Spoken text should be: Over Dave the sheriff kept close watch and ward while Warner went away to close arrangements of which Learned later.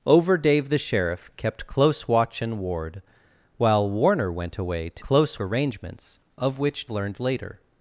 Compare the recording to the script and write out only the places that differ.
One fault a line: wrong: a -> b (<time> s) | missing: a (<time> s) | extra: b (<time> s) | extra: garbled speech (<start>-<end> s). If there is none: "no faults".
no faults